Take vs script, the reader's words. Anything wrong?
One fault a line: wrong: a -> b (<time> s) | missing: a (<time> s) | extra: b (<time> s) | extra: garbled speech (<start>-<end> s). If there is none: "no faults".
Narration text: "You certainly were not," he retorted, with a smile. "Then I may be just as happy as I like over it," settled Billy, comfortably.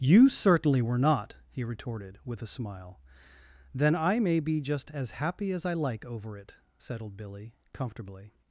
no faults